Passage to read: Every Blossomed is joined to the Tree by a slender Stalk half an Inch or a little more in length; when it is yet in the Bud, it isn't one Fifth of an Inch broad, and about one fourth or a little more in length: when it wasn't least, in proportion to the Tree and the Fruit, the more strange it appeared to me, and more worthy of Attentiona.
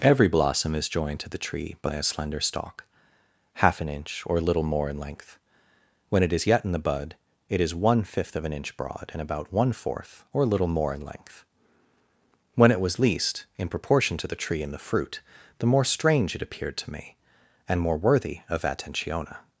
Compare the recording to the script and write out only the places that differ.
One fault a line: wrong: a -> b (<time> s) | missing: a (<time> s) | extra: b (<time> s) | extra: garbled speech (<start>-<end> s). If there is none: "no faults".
wrong: Blossomed -> Blossom (0.3 s)
wrong: isn't -> is (7.6 s)
wrong: wasn't -> was (12.8 s)